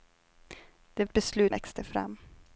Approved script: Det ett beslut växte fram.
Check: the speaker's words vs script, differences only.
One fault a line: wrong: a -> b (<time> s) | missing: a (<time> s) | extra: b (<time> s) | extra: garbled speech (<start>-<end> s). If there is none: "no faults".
no faults